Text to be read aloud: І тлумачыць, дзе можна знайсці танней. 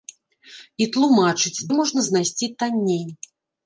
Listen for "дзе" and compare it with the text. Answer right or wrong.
wrong